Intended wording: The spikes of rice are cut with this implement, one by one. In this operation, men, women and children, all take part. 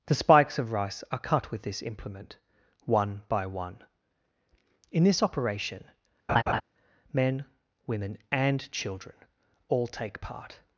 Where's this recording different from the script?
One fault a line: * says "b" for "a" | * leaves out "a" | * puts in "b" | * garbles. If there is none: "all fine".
all fine